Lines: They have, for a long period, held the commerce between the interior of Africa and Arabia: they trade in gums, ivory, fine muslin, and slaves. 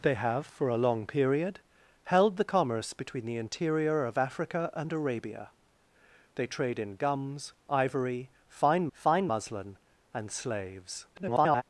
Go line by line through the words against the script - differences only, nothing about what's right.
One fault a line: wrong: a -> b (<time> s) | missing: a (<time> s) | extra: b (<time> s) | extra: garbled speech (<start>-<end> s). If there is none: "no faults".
extra: fine (8.9 s)
extra: garbled speech (11.1-11.6 s)